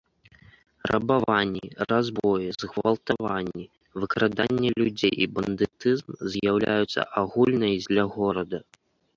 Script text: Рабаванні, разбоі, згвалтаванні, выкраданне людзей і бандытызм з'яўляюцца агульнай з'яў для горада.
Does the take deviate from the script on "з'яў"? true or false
true